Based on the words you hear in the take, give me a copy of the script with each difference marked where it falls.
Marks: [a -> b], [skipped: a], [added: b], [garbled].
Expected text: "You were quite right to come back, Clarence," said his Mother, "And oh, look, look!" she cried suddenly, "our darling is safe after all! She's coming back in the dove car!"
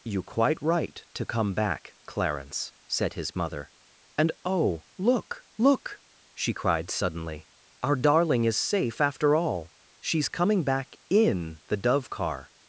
"You [skipped: were] quite right to come back, Clarence," said his Mother, "And oh, look, look!" she cried suddenly, "our darling is safe after all! She's coming back in the dove car!"